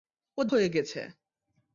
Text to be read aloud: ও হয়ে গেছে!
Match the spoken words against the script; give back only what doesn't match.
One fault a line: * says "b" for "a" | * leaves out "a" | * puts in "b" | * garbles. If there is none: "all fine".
all fine